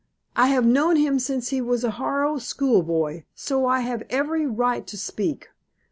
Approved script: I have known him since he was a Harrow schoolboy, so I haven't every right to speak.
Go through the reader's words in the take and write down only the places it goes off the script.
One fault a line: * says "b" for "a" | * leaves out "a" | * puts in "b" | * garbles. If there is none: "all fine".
* says "have" for "haven't"